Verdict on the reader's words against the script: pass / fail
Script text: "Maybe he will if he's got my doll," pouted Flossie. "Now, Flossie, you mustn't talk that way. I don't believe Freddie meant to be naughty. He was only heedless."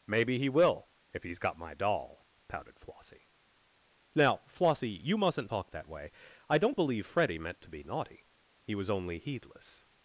pass